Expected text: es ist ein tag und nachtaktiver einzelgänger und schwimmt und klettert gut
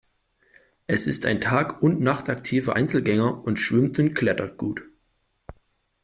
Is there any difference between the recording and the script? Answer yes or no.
no